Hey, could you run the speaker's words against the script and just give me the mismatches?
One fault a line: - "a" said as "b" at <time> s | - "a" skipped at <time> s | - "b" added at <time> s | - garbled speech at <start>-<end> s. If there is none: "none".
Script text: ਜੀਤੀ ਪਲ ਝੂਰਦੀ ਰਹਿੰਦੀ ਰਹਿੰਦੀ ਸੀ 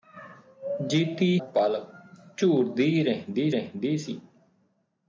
none